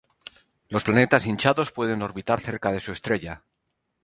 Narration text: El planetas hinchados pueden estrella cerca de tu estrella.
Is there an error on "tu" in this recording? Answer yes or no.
yes